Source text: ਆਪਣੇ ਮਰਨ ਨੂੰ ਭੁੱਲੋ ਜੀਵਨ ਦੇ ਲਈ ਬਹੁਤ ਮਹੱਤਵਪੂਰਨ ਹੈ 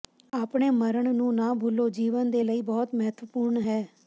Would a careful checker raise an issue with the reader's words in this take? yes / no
yes